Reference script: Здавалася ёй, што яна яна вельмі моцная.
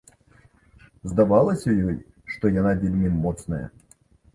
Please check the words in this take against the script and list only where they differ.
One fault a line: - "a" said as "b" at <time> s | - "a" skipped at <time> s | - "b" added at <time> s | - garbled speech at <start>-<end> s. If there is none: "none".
- "яна" skipped at 2.8 s